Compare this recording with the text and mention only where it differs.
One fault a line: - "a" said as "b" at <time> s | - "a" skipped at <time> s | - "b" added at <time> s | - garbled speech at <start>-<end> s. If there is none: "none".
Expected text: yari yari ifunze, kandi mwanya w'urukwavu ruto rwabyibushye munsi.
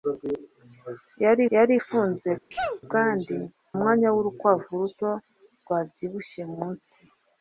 none